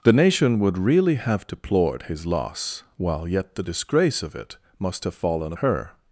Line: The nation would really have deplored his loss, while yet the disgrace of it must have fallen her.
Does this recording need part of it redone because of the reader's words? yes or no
no